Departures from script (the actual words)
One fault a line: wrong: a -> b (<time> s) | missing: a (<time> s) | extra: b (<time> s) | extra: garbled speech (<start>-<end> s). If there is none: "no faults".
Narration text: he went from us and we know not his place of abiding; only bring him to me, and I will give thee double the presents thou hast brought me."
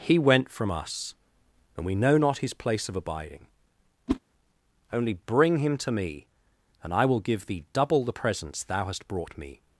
no faults